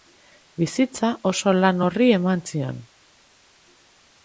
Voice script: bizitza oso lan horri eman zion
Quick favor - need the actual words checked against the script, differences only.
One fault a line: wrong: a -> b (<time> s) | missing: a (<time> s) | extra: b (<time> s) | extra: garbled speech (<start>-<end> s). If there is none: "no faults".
no faults